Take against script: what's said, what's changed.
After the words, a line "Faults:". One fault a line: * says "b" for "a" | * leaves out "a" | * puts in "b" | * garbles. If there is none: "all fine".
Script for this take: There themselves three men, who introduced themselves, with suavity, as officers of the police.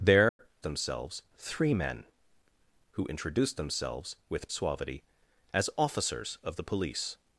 There themselves three men, who introduced themselves, with suavity, as officers of the police.
Faults:
all fine